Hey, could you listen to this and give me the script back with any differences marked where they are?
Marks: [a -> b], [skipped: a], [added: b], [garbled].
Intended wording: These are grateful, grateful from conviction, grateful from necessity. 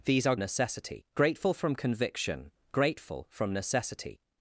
These are [grateful, -> necessity] grateful from conviction, grateful from necessity.